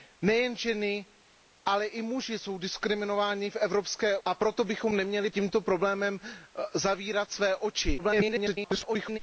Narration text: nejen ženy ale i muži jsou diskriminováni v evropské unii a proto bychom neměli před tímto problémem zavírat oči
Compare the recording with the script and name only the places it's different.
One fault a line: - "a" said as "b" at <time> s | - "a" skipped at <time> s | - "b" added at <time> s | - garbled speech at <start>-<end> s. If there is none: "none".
- "unii" skipped at 4.2 s
- "před" skipped at 5.3 s
- garbled speech at 8.0-9.2 s